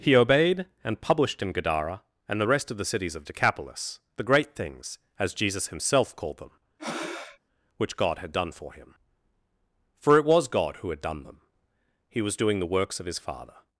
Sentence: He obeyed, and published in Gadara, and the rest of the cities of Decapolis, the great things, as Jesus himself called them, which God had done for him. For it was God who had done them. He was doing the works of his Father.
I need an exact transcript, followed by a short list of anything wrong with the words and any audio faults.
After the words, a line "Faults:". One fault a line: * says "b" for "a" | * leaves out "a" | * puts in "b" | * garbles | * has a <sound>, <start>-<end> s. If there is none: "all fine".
He obeyed, and published in Gadara, and the rest of the cities of Decapolis, the great things, as Jesus himself called them, which God had done for him. For it was God who had done them. He was doing the works of his Father.
Faults:
* has a breath, 6.8-7.4 s